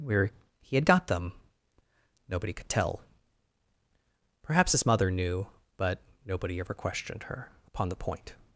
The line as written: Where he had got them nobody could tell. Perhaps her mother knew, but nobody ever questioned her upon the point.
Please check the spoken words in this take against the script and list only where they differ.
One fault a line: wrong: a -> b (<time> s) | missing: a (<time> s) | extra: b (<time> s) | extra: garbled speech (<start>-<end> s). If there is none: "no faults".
wrong: her -> his (4.7 s)